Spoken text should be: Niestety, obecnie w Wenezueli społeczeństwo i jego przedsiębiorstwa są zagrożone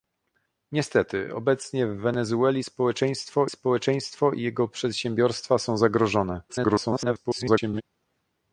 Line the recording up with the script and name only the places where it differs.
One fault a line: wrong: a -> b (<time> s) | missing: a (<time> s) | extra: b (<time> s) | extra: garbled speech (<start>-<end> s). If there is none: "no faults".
extra: społeczeństwo (3.5 s)
extra: garbled speech (6.5-7.8 s)